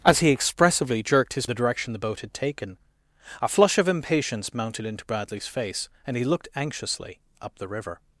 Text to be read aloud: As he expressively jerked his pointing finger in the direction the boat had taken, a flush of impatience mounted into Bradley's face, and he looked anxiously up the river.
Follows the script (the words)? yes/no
no